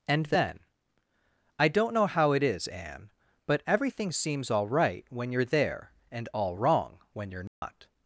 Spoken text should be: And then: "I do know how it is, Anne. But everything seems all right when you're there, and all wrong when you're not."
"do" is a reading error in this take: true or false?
true